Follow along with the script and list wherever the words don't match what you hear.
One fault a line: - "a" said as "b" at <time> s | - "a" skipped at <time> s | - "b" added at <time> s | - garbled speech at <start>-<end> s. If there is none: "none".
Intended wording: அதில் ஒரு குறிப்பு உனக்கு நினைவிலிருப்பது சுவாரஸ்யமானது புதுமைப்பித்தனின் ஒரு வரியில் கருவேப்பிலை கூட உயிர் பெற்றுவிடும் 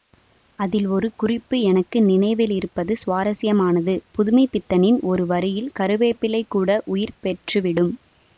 - "உனக்கு" said as "எனக்கு" at 1.7 s